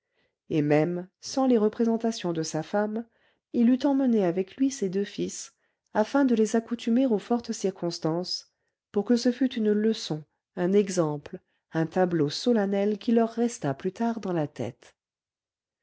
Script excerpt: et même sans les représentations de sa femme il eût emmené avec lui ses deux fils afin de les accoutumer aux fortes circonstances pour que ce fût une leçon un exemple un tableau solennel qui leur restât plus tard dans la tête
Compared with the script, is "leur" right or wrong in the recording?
right